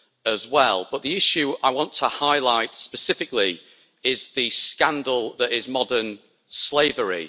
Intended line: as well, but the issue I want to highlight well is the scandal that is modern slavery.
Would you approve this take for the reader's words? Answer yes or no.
no